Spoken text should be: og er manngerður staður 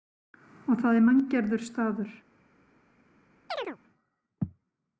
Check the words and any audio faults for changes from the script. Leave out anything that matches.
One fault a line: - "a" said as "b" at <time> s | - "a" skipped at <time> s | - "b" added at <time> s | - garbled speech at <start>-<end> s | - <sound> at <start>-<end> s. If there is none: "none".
- "það" added at 0.8 s
- chirp at 3.5-3.8 s